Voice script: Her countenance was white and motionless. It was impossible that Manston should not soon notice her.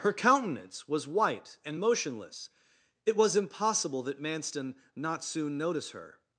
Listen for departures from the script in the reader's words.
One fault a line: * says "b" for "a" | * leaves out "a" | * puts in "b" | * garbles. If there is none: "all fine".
* leaves out "should"